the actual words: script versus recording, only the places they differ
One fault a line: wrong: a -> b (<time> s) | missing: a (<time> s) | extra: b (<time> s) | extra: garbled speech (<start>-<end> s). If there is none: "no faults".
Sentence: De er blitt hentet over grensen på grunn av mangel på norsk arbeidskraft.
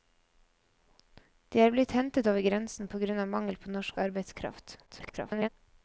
extra: garbled speech (4.9-5.5 s)